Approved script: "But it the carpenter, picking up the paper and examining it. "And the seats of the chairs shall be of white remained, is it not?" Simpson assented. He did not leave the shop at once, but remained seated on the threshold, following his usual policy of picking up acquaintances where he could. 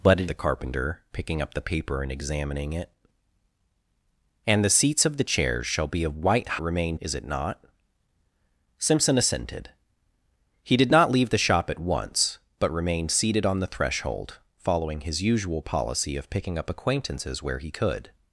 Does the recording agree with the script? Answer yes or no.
yes